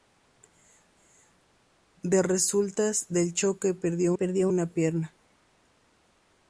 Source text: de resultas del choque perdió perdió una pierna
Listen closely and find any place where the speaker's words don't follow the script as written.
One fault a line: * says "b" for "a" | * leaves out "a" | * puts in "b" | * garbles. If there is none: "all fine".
all fine